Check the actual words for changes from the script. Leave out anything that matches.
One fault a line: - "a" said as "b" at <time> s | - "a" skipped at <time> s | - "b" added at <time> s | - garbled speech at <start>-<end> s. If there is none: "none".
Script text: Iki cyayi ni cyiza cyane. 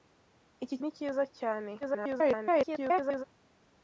- "cyayi" skipped at 0.8 s
- garbled speech at 1.8-3.2 s